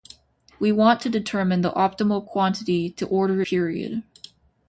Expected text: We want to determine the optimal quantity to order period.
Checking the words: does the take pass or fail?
pass